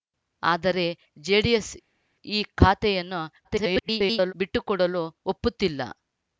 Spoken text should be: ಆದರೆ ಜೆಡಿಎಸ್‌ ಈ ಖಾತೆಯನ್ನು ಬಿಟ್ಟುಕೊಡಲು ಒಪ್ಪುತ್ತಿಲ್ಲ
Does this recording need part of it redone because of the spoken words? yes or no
yes